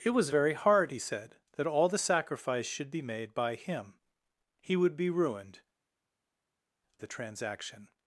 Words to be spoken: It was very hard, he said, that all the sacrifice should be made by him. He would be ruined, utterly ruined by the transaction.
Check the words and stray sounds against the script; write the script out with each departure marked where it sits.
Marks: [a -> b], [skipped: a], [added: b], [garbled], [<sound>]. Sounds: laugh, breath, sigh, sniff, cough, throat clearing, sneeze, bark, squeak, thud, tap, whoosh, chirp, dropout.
It was very hard, he said, that all the sacrifice should be made by him. He would be ruined, [skipped: utterly ruined by] the transaction.